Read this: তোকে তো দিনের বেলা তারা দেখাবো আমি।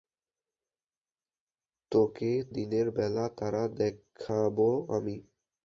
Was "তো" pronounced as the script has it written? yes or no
no